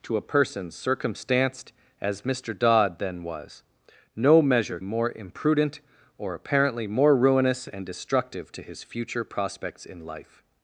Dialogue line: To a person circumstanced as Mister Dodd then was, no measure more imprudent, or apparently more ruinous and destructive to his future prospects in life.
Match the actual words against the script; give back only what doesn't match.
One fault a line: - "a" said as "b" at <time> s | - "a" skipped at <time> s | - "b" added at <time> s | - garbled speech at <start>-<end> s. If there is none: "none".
none